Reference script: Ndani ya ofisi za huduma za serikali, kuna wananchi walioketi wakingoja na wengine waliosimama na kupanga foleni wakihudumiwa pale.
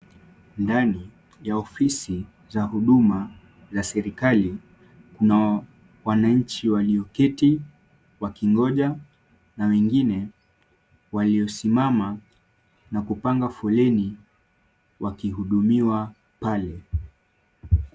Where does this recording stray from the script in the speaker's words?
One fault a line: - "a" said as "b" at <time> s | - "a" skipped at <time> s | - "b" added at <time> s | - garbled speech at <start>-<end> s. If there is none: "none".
none